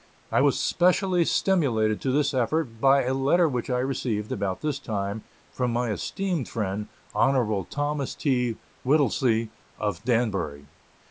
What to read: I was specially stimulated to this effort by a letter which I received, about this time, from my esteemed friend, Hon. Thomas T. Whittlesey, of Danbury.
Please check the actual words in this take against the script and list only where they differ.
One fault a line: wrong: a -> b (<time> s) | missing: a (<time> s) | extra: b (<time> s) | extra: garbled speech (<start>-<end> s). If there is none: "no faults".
no faults